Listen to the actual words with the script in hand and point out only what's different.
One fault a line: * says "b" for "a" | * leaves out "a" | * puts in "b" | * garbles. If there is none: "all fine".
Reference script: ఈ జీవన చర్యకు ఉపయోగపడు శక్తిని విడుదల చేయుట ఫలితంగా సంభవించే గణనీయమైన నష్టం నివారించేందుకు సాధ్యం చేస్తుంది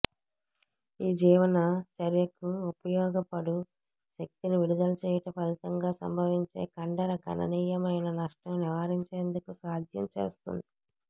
* puts in "కండర"